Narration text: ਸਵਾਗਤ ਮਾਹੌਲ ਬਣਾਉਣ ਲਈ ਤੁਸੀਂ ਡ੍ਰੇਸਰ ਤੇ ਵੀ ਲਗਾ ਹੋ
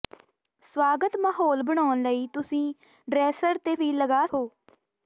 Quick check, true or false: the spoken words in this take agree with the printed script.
true